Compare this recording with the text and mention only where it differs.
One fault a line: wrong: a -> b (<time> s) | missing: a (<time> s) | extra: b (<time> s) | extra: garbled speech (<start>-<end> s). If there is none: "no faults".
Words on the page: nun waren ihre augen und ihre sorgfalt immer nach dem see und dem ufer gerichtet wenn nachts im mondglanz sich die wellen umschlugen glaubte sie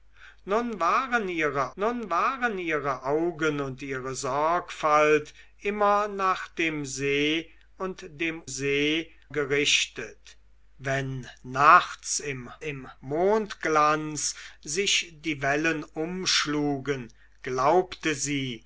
extra: nun waren ihre (1.8 s)
wrong: ufer -> see (8.5 s)
extra: im (12.6 s)